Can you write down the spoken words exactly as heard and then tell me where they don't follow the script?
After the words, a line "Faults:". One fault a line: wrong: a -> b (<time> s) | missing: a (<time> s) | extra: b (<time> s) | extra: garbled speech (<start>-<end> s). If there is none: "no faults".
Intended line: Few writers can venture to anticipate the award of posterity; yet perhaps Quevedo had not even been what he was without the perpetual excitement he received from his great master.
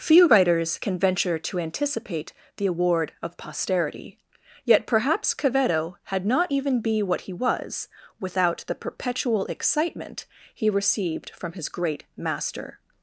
Few writers can venture to anticipate the award of posterity; yet perhaps Quevedo had not even be what he was without the perpetual excitement he received from his great master.
Faults:
wrong: been -> be (6.8 s)